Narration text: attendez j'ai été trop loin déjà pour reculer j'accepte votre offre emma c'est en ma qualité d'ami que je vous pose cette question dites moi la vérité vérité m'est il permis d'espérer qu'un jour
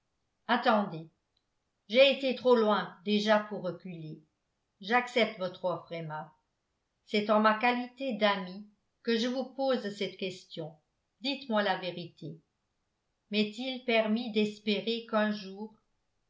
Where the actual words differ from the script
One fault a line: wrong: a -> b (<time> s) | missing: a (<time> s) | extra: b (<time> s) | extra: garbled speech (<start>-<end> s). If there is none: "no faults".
missing: vérité (12.4 s)